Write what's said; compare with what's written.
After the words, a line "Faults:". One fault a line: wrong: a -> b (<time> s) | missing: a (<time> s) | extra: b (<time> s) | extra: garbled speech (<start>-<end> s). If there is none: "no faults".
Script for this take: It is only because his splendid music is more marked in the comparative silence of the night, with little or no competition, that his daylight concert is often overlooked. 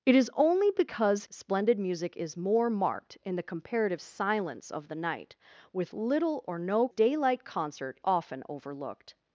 It is only because splendid music is more marked in the comparative silence of the night, with little or no daylight concert often overlooked.
Faults:
missing: his (1.2 s)
missing: competition that his (6.9 s)
missing: is (8.0 s)